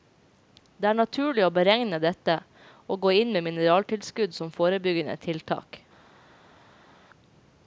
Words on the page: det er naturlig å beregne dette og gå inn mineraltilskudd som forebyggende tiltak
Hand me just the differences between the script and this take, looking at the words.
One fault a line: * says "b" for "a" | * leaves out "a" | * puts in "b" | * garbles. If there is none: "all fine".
* puts in "med"